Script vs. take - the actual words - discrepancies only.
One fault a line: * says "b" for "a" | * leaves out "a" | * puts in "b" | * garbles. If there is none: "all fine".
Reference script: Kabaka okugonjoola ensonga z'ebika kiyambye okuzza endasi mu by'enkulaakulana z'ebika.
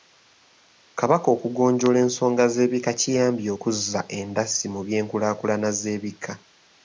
all fine